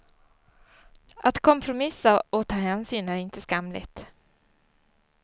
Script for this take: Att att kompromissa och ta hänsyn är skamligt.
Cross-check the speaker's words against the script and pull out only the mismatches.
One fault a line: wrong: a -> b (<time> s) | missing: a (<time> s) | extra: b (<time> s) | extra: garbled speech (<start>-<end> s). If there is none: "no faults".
missing: att (1.4 s)
extra: inte (3.1 s)